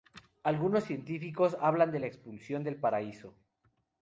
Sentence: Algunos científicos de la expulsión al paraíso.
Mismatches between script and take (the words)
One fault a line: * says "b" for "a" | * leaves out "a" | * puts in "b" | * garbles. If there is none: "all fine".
* puts in "hablan"
* says "del" for "al"